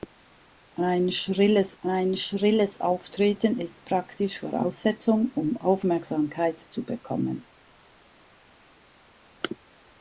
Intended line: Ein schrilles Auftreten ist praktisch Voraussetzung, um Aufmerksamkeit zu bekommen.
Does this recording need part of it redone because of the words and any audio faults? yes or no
yes